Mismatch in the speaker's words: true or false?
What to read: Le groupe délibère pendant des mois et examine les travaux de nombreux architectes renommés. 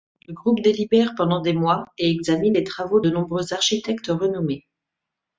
false